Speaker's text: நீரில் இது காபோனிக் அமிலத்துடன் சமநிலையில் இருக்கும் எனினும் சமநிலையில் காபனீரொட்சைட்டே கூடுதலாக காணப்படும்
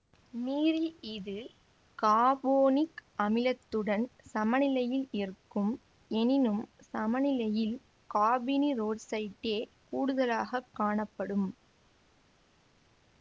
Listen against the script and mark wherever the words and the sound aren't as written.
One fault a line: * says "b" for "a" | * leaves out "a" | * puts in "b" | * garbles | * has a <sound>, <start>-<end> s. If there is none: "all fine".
all fine